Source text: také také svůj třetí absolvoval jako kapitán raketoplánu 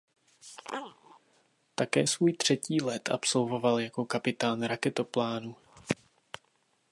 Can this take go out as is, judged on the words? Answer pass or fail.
fail